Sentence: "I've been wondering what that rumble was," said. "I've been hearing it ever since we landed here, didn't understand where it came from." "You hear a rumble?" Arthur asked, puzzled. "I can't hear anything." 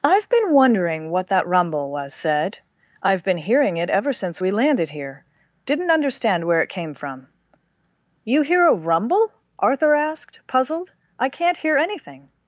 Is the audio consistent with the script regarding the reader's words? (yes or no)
yes